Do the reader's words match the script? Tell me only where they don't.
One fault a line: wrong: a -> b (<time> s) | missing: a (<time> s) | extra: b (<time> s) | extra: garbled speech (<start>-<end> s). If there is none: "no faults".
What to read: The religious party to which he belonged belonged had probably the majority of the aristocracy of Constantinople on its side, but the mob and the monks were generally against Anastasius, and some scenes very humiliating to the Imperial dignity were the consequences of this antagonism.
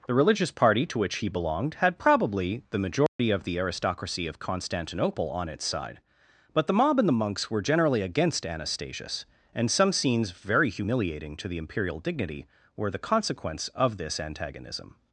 missing: belonged (1.8 s)
wrong: consequences -> consequence (13.0 s)